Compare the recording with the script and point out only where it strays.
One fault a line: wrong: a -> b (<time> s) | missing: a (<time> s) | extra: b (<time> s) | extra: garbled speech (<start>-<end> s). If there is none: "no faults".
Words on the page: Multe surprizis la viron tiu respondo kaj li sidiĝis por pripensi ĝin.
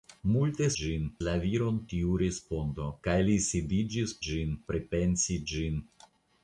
wrong: surprizis -> ĝin (0.8 s)
wrong: por -> ĝin (4.3 s)